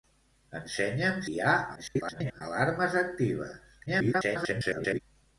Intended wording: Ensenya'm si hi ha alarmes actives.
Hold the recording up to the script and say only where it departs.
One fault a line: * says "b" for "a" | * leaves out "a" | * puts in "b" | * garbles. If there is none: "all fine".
* leaves out "si"
* garbles
* garbles